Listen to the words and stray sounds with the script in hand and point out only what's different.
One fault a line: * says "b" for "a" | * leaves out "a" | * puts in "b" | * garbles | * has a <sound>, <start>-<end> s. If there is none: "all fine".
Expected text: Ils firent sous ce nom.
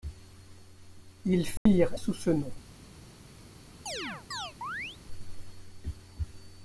* has a dropout, 1.6-1.7 s
* has a chirp, 3.9-5.0 s